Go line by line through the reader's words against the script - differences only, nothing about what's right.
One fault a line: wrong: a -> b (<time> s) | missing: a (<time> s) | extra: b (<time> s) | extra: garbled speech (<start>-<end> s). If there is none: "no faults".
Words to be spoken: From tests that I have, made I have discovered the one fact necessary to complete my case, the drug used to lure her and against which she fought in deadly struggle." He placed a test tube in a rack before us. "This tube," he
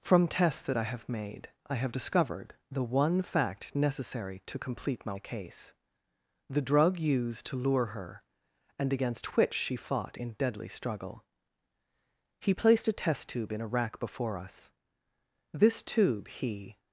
no faults